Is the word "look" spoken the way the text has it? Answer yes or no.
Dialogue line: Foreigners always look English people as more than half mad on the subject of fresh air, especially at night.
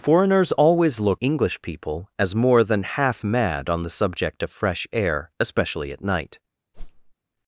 yes